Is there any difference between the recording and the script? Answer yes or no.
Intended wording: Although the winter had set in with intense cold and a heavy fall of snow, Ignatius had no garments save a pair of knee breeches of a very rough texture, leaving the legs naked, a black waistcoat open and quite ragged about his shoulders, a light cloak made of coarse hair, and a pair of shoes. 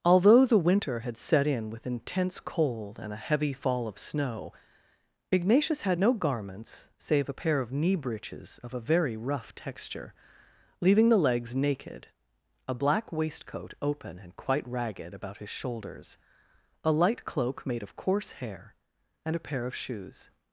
no